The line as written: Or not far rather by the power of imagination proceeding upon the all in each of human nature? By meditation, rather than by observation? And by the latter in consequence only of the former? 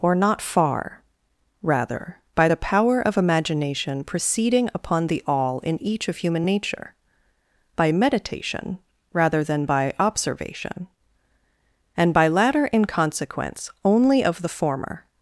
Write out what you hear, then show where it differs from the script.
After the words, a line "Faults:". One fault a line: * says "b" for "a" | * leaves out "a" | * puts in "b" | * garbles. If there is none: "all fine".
Or not far rather by the power of imagination proceeding upon the all in each of human nature? By meditation, rather than by observation? And by latter in consequence only of the former?
Faults:
* leaves out "the"